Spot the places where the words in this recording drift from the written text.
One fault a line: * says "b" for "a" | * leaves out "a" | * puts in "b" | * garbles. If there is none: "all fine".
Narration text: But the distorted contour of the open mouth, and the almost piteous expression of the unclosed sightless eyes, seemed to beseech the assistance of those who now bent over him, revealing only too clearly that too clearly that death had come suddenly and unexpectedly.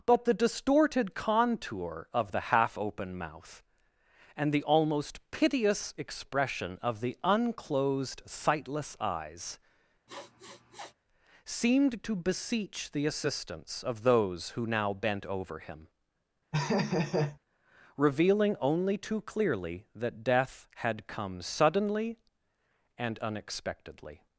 * puts in "half"
* leaves out "too clearly that"